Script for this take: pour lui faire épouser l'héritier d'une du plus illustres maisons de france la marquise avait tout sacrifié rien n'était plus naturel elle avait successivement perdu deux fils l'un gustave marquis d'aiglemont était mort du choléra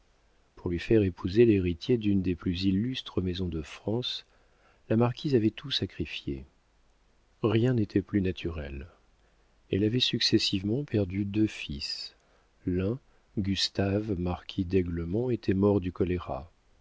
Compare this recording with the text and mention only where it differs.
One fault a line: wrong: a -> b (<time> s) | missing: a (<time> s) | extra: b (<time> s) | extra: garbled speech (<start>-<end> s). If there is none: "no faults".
wrong: du -> des (2.2 s)